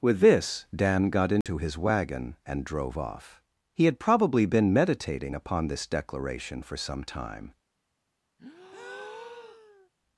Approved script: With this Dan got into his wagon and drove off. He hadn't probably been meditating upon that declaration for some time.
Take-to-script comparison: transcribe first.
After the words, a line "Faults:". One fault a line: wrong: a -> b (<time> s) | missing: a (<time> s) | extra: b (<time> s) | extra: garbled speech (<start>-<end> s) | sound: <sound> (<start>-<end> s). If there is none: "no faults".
With this Dan got into his wagon and drove off. He had probably been meditating upon this declaration for some time.
Faults:
sound: dropout (1.4-1.5 s)
wrong: hadn't -> had (3.9 s)
wrong: that -> this (5.7 s)
sound: breath (8.4-9.9 s)